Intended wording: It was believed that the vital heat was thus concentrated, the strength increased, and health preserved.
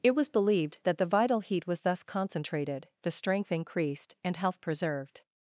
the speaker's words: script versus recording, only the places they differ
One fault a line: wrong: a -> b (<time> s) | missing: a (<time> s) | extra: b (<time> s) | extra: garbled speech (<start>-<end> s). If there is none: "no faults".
no faults